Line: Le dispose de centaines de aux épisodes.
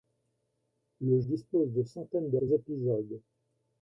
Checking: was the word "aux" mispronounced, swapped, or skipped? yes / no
no